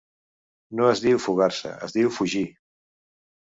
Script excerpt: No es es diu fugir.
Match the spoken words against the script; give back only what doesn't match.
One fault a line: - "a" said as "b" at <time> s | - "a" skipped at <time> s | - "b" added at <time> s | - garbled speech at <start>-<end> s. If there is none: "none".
- "diu fugar se" added at 1.0 s